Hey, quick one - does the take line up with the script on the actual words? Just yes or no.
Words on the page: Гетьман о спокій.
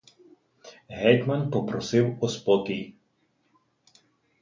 no